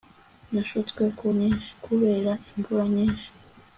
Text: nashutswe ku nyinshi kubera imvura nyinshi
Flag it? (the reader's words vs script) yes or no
no